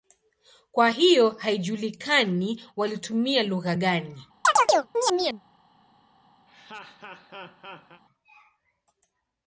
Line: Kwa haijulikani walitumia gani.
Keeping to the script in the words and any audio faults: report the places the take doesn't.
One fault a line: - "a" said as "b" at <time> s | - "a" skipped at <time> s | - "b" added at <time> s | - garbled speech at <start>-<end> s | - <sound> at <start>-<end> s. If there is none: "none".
- "hiyo" added at 0.9 s
- "lugha" added at 3.4 s
- chirp at 4.4-5.4 s
- laugh at 6.5-8.0 s